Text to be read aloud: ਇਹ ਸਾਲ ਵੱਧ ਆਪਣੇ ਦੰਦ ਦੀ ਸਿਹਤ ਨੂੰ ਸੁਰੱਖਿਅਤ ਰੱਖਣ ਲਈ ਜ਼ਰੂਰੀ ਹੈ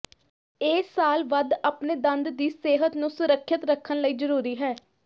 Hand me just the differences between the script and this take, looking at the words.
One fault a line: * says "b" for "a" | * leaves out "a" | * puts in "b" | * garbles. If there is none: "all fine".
all fine